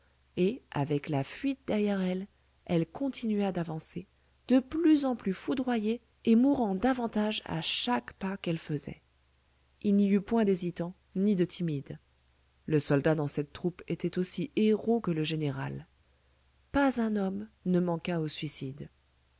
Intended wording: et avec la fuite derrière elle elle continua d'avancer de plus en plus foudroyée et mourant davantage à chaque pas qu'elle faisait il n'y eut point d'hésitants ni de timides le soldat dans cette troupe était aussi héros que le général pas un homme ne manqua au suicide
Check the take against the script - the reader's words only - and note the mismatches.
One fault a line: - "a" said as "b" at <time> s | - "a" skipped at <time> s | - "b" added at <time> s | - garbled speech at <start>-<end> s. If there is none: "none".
none